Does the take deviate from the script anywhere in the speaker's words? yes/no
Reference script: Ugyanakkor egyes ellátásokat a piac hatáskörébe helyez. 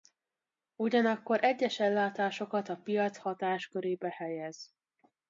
no